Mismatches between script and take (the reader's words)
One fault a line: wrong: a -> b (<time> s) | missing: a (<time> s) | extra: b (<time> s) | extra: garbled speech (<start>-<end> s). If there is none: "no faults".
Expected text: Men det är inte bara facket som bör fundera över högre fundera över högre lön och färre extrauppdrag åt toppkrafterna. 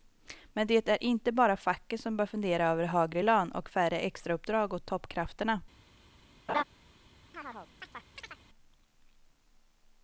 missing: fundera över högre (3.2 s)